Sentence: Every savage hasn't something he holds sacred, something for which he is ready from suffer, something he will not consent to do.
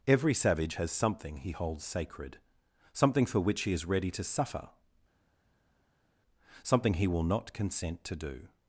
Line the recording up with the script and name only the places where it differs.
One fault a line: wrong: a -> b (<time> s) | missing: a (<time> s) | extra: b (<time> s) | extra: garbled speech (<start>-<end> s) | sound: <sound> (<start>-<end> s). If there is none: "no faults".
wrong: hasn't -> has (0.7 s)
wrong: from -> to (4.1 s)